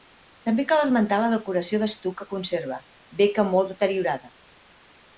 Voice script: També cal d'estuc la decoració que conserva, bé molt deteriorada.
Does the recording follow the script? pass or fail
fail